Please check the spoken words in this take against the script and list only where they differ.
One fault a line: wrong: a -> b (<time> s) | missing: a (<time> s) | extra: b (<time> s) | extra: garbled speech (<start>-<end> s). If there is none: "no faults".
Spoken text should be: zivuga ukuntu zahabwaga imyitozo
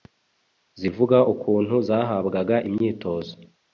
no faults